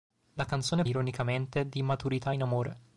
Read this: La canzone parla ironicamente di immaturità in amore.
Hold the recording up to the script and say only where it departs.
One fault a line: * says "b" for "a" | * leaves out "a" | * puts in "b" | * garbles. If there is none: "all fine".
* leaves out "parla"